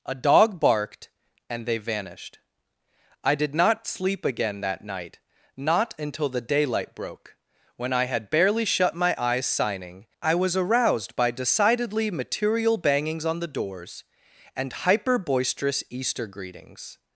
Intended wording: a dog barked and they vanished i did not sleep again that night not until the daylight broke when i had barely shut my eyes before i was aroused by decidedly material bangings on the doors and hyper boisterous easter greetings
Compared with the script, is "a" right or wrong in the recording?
right